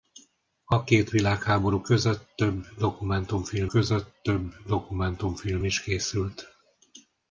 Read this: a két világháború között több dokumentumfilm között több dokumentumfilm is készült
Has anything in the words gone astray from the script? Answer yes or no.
no